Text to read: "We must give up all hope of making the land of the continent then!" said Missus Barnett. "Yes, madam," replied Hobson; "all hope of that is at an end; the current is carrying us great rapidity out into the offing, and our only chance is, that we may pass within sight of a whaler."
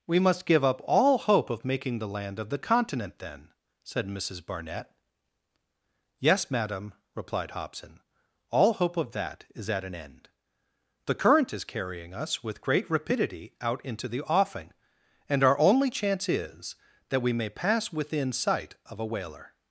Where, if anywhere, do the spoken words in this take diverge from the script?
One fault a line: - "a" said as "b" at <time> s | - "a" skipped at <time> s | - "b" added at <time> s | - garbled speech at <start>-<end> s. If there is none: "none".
- "with" added at 12.4 s